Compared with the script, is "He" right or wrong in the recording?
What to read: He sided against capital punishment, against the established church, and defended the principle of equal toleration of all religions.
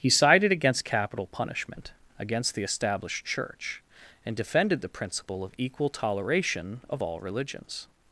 right